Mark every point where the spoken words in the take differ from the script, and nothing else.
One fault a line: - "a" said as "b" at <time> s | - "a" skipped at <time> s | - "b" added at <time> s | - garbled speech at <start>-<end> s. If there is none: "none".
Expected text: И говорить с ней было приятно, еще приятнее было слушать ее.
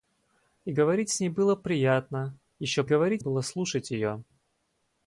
- "приятнее" said as "говорить" at 2.8 s